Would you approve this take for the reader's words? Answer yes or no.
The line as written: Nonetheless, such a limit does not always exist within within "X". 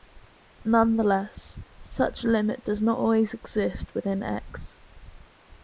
no